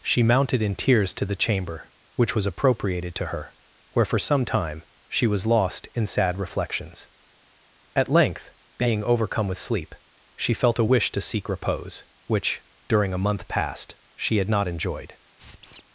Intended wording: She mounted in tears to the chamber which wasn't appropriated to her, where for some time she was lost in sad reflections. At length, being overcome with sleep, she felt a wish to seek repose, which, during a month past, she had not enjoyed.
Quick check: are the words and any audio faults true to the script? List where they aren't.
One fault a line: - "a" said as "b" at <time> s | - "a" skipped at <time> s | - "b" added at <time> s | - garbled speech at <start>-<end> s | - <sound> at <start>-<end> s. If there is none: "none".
- "wasn't" said as "was" at 2.4 s
- squeak at 15.4-15.8 s